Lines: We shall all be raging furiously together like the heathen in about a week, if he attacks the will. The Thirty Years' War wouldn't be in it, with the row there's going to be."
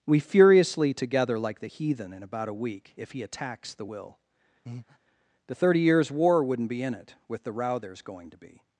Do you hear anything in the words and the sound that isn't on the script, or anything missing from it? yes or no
yes